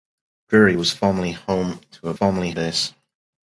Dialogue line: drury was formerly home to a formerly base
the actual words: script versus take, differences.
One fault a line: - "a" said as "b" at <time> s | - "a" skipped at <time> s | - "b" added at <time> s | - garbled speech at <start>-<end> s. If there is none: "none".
none